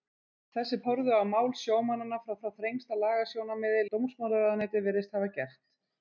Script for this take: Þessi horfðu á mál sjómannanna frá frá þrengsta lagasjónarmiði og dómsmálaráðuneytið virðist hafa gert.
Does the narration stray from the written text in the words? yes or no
no